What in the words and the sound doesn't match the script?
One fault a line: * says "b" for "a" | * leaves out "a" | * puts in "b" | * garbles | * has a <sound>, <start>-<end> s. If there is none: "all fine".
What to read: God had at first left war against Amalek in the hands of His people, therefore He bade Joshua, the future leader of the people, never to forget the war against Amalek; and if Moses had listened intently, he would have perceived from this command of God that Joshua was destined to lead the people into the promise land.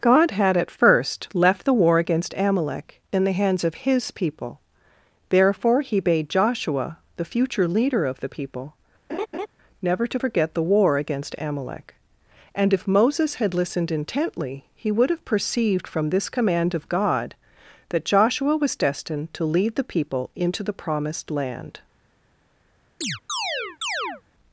* puts in "the"
* has a laugh, 9.1-9.5 s
* says "promised" for "promise"
* has a chirp, 23.0-24.2 s